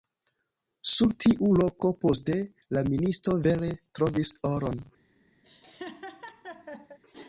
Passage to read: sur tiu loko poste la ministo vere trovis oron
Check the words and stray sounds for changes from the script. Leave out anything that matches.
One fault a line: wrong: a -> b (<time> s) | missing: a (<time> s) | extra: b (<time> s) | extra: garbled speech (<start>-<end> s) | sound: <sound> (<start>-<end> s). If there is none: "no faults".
sound: laugh (5.4-7.0 s)